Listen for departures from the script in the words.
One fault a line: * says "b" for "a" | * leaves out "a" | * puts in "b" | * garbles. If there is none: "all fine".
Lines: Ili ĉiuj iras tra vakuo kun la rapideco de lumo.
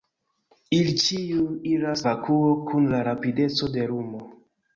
* leaves out "tra"